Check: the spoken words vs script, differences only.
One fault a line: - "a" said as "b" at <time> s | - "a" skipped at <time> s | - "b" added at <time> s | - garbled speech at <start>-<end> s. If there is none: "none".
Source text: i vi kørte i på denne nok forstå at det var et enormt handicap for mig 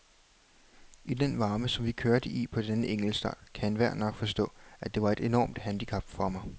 - "den varme som" added at 1.1 s
- "enkeltstart kan enhver" added at 2.9 s